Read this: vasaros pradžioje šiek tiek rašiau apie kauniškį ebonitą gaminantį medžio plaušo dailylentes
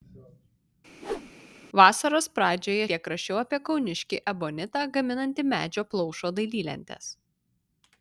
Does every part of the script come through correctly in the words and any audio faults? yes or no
no